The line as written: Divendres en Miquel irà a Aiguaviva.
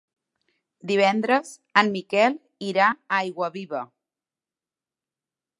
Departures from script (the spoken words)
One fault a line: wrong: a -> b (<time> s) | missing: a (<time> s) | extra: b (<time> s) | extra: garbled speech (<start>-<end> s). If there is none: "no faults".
no faults